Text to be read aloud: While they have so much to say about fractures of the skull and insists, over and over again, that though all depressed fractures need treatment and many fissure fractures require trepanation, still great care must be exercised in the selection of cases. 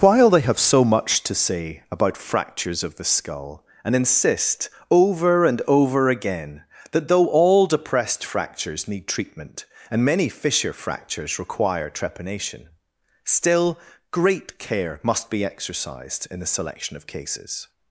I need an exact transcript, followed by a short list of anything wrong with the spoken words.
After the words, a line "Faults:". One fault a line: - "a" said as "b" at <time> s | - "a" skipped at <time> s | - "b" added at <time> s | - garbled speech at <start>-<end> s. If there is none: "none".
While they have so much to say about fractures of the skull and insist, over and over again, that though all depressed fractures need treatment and many fissure fractures require trepanation, still great care must be exercised in the selection of cases.
Faults:
- "insists" said as "insist" at 4.0 s